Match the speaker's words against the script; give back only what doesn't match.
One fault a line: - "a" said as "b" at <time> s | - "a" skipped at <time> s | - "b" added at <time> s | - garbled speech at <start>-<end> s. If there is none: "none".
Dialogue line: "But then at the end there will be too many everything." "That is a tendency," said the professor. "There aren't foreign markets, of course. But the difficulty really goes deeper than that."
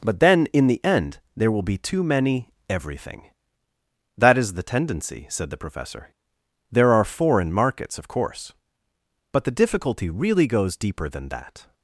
- "at" said as "in" at 0.5 s
- "a" said as "the" at 4.5 s
- "aren't" said as "are" at 6.9 s